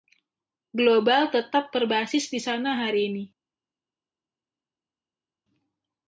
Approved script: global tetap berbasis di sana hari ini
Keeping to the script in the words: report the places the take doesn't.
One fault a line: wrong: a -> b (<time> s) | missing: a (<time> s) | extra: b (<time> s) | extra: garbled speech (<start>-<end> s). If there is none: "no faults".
no faults